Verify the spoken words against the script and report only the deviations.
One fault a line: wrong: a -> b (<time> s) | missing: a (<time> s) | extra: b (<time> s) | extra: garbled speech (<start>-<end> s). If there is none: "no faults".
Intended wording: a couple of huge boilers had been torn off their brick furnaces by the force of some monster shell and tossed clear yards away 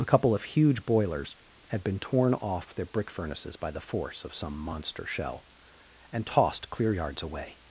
no faults